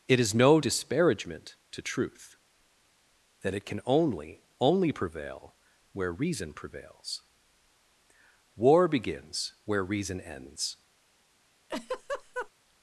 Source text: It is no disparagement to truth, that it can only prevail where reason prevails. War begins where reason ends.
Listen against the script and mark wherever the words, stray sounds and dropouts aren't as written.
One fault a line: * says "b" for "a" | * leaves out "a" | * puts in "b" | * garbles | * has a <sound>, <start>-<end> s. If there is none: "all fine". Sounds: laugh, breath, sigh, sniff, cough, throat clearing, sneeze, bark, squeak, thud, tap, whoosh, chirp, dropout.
* puts in "only"
* has a laugh, 11.7-12.5 s